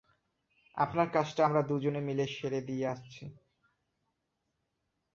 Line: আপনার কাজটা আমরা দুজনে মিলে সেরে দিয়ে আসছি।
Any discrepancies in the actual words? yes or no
no